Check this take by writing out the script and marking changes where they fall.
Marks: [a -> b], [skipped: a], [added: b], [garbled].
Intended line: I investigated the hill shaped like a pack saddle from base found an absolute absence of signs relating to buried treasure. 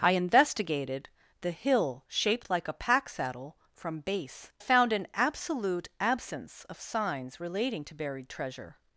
I investigated the hill shaped like a pack saddle from base found an absolute absence of signs relating to buried treasure.